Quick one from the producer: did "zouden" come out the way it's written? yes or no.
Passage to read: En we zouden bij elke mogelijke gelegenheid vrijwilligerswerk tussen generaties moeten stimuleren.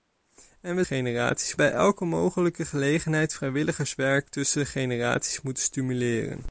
no